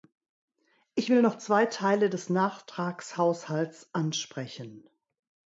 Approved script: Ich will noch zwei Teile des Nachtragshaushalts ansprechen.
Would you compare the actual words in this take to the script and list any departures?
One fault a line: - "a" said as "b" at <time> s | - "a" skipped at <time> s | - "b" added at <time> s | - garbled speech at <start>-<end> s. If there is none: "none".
none